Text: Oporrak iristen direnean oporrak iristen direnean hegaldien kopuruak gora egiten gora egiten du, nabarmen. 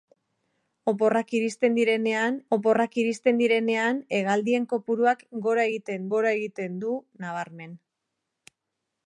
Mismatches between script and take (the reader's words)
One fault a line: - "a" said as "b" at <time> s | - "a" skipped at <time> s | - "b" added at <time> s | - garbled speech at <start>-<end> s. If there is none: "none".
none